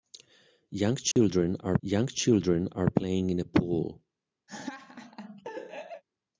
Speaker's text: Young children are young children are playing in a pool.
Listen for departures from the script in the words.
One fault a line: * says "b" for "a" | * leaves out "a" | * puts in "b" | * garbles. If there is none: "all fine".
all fine